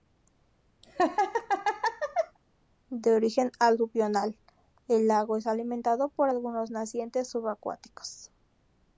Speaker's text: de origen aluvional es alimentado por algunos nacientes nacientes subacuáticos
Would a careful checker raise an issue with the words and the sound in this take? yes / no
yes